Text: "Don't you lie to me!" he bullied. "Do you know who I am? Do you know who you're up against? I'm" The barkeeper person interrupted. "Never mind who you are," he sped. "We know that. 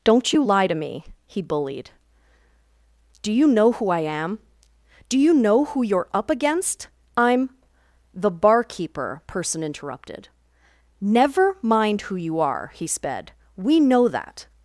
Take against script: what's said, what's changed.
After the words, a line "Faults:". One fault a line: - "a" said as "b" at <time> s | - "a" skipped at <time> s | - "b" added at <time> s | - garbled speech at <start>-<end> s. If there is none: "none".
"Don't you lie to me!" he bullied. "Do you know who I am? Do you know who you're up against? I'm" The barkeeper person interrupted. "Never mind who you are," he sped. "We know that.
Faults:
none